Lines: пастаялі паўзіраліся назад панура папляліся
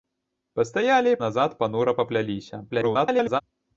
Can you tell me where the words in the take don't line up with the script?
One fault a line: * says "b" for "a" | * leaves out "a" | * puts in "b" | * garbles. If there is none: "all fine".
* leaves out "паўзіраліся"
* garbles